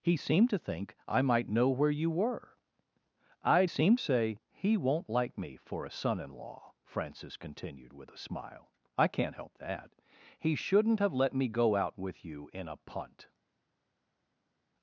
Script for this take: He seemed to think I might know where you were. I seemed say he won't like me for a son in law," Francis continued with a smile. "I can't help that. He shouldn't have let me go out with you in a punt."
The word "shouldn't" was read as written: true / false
true